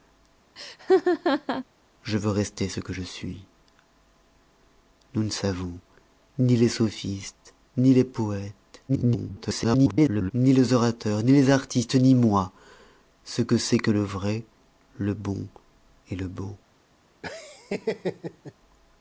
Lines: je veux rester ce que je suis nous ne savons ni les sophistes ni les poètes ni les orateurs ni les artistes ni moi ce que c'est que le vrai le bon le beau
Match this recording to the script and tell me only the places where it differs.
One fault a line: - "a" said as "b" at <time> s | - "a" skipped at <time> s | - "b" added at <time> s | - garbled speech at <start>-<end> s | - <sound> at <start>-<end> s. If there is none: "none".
- laugh at 0.6-1.6 s
- garbled speech at 8.9-10.3 s
- laugh at 17.2-18.5 s